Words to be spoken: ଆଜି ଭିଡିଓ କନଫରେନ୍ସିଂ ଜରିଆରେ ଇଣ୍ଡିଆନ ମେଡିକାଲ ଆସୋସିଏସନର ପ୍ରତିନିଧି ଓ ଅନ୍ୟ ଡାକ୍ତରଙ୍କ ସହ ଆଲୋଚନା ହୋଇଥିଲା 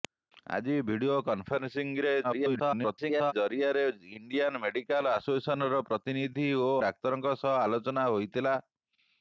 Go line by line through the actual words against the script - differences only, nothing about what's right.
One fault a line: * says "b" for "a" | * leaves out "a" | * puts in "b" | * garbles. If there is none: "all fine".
* garbles
* leaves out "ଅନ୍ୟ"